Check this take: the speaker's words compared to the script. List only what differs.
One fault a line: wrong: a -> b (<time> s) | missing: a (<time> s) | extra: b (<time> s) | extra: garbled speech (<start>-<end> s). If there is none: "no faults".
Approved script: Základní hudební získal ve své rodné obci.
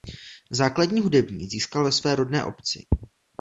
no faults